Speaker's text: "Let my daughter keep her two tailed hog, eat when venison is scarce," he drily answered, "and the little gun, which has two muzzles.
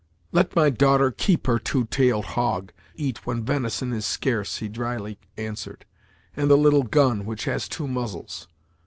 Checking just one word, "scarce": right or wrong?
right